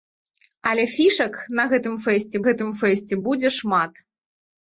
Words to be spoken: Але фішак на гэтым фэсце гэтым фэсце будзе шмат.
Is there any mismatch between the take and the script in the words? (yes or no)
no